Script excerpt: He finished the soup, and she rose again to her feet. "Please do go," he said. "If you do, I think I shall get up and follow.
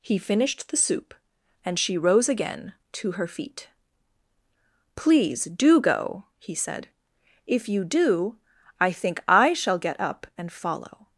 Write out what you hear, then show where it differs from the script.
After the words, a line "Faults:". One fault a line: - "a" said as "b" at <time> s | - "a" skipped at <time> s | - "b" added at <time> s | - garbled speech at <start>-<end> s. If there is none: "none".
He finished the soup, and she rose again to her feet. "Please do go," he said. "If you do, I think I shall get up and follow.
Faults:
none